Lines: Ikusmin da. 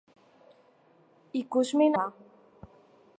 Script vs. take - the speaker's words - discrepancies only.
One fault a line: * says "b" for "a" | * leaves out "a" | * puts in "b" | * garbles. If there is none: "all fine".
all fine